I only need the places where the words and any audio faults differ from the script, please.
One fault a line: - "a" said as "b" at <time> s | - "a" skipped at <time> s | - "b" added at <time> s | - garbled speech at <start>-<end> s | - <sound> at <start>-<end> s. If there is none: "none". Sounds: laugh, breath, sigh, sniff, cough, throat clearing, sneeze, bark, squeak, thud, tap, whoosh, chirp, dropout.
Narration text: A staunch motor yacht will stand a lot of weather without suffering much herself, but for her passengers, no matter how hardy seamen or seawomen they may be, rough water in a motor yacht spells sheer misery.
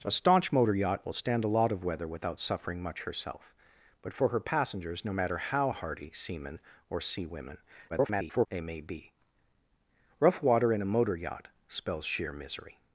- garbled speech at 7.9-8.5 s